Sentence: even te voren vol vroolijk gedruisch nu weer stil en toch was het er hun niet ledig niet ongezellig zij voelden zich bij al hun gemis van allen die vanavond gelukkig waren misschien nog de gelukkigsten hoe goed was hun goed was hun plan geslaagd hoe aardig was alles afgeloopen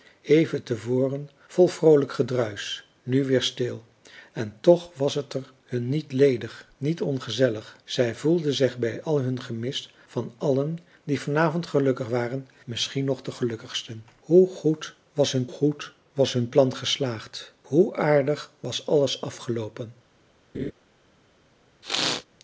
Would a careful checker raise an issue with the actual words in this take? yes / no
no